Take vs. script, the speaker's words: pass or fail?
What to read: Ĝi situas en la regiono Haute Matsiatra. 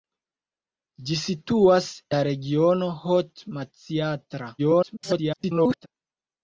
fail